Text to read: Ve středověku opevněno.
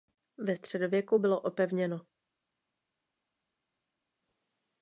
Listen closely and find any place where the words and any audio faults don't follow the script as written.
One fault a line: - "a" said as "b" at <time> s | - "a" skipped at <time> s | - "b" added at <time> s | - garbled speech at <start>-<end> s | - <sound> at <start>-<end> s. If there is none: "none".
- "bylo" added at 1.2 s